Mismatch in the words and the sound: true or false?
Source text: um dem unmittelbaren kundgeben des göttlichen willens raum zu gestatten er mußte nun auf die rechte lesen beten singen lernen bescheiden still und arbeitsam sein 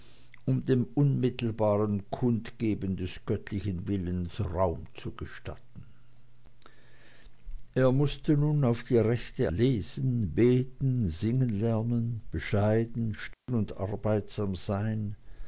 true